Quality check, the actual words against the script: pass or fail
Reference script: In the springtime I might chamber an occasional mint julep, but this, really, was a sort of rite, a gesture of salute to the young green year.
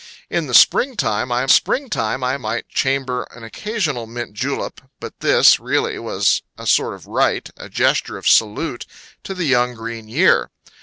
fail